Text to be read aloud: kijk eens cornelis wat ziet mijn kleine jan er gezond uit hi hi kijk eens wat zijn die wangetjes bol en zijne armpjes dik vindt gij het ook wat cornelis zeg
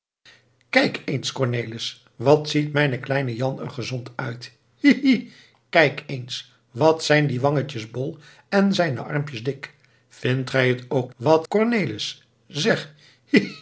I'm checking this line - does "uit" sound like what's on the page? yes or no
yes